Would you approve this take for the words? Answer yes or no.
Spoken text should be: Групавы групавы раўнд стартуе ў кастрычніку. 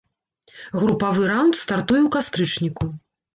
no